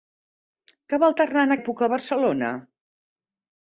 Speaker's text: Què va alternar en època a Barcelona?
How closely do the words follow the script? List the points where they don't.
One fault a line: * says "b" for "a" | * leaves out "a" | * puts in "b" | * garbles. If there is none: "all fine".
all fine